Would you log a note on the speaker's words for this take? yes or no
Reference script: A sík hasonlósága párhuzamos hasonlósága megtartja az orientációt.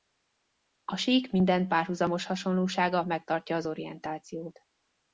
yes